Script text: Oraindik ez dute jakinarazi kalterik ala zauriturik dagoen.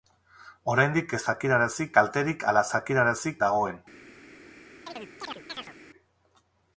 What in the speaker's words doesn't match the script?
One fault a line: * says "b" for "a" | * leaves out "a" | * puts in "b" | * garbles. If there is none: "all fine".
* leaves out "dute"
* says "jakinarazi" for "zauriturik"